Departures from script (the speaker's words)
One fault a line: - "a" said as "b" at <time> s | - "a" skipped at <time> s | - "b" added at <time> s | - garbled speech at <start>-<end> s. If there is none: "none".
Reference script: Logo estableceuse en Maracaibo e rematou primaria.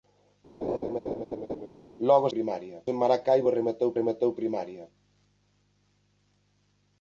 - "estableceuse" said as "primaria" at 2.3 s
- "rematou" added at 4.0 s